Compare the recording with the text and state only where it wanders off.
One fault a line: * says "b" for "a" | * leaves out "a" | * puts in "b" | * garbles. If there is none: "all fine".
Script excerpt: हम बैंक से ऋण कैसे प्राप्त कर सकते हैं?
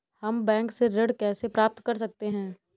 all fine